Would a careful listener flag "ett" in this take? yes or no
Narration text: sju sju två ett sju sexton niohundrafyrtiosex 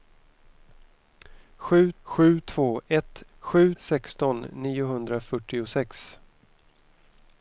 no